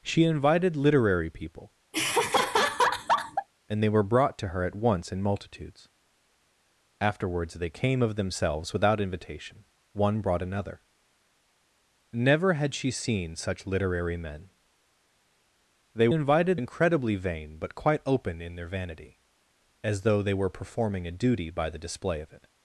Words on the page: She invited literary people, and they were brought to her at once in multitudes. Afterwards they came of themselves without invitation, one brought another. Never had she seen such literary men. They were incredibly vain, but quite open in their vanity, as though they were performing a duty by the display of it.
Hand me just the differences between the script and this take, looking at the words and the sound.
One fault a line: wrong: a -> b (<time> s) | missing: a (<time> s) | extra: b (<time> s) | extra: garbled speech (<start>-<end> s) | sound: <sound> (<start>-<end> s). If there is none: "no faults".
sound: laugh (1.9-3.5 s)
wrong: were -> invited (16.1 s)